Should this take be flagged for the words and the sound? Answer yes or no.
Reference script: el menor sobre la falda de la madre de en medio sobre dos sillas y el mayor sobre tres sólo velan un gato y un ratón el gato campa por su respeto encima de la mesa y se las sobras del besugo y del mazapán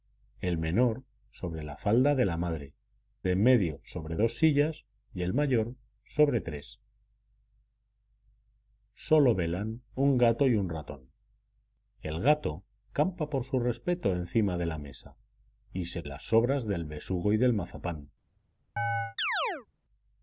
yes